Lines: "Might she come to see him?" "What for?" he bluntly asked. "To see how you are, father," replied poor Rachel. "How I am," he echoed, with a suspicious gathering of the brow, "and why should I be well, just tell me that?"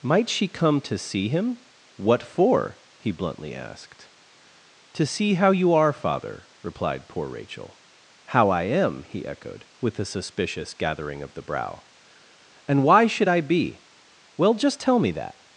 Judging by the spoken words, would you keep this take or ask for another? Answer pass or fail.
pass